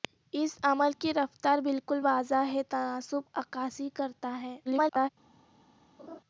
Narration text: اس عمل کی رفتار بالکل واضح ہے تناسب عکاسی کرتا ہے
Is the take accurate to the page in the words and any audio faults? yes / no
no